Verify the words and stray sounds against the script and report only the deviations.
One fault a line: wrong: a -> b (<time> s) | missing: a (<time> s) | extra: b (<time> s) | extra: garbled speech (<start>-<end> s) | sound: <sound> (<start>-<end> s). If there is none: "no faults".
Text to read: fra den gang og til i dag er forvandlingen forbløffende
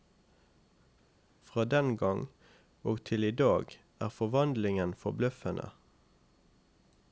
no faults